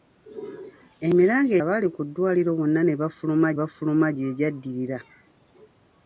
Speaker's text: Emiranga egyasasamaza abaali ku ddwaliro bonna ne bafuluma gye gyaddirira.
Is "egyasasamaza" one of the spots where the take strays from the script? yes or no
yes